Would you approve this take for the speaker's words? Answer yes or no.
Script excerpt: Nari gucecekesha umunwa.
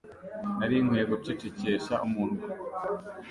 no